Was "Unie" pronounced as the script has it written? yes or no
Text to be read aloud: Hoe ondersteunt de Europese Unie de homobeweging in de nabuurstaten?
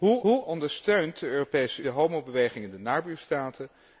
no